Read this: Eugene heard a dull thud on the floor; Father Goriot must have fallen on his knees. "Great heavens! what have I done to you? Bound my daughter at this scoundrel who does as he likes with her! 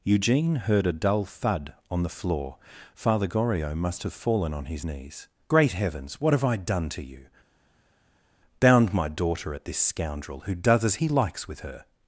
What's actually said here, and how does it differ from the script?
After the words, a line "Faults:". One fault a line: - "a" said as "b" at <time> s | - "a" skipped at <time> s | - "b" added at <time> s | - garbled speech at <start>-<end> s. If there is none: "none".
Eugene heard a dull thud on the floor; Father Goriot must have fallen on his knees. "Great heavens! what have I done to you? Bound my daughter at this scoundrel who does as he likes with her!
Faults:
none